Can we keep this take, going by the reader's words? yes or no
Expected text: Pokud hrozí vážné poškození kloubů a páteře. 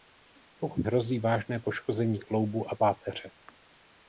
yes